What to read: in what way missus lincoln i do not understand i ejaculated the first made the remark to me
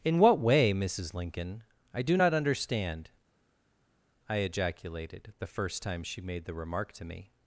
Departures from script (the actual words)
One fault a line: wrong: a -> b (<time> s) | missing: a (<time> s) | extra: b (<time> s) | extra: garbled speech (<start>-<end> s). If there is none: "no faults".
extra: time she (5.8 s)